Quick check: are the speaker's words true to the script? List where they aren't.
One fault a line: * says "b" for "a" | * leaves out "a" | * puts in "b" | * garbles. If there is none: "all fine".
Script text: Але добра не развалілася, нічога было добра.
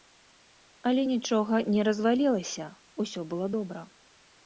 * says "нічога" for "добра"
* says "усё" for "нічога"